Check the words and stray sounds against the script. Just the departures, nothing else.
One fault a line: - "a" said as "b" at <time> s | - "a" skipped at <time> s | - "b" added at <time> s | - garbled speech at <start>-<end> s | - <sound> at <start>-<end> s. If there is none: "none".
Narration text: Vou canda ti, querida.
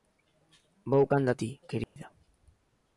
- dropout at 1.8-2.0 s